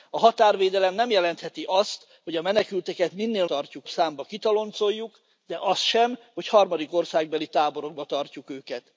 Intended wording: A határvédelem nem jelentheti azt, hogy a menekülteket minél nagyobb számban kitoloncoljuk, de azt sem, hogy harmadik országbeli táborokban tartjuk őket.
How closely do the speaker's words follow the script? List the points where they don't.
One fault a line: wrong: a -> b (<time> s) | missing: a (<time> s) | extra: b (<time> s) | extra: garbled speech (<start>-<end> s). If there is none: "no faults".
wrong: nagyobb -> tartjuk (3.5 s)